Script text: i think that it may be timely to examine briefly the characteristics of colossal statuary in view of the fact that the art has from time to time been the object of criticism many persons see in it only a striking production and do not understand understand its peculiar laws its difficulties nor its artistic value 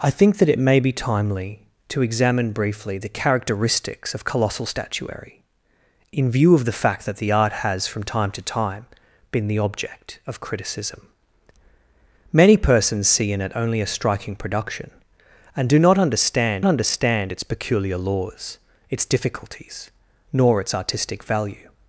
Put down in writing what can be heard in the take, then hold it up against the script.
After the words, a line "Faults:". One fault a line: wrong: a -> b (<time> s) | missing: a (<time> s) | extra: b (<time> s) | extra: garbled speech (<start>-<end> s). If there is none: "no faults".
i think that it may be timely to examine briefly the characteristics of colossal statuary in view of the fact that the art has from time to time been the object of criticism many persons see in it only a striking production and do not understand understand its peculiar laws its difficulties nor its artistic value
Faults:
no faults